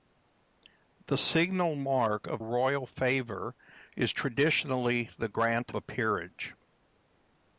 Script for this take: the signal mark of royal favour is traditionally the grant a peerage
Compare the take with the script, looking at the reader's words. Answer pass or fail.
pass